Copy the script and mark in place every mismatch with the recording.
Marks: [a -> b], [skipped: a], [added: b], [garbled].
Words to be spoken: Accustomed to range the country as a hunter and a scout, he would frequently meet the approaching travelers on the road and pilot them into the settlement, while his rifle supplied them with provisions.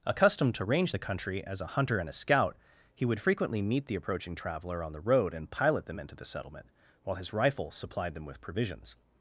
Accustomed to range the country as a hunter and a scout, he would frequently meet the approaching [travelers -> traveler] on the road and pilot them into the settlement, while his rifle supplied them with provisions.